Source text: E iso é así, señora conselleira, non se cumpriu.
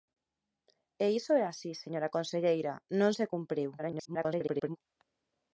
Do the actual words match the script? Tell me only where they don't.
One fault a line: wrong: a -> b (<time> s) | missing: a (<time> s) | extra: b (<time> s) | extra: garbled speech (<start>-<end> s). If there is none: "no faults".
extra: garbled speech (3.8-4.8 s)